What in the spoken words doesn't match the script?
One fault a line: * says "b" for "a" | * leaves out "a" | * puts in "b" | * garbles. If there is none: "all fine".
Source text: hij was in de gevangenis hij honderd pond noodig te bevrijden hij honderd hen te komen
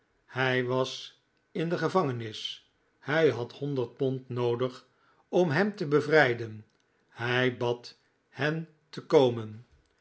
* puts in "had"
* puts in "om hem"
* says "bad" for "honderd"